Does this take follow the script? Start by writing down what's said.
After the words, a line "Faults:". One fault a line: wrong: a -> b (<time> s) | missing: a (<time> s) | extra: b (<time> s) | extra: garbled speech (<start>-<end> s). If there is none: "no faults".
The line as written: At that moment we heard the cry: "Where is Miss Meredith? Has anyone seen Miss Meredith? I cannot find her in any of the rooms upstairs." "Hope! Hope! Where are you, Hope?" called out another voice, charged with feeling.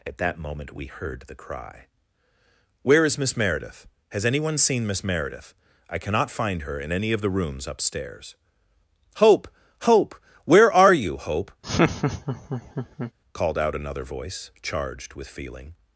At that moment we heard the cry: "Where is Miss Meredith? Has anyone seen Miss Meredith? I cannot find her in any of the rooms upstairs." "Hope! Hope! Where are you, Hope?" called out another voice, charged with feeling.
Faults:
no faults